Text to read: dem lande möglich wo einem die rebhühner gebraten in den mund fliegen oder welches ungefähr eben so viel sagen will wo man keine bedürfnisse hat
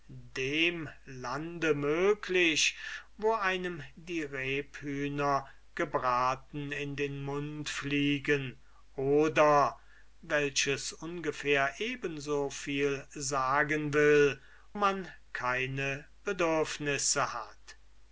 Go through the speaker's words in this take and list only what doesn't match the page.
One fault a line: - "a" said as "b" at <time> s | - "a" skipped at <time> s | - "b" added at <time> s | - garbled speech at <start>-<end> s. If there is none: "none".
- "wo" skipped at 14.4 s